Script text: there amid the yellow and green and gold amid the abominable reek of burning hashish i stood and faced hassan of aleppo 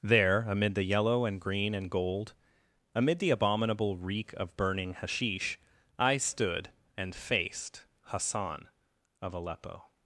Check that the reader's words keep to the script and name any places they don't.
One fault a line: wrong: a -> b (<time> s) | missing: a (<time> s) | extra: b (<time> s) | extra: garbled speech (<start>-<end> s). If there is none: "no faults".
no faults